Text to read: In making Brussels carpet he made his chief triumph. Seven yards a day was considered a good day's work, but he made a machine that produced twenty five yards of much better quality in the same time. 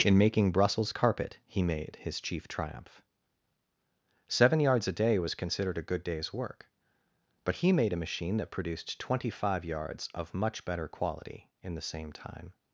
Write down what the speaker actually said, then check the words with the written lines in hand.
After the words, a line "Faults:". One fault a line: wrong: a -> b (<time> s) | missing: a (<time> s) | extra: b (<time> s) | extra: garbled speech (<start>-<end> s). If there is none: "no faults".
In making Brussels carpet he made his chief triumph. Seven yards a day was considered a good day's work, but he made a machine that produced twenty five yards of much better quality in the same time.
Faults:
no faults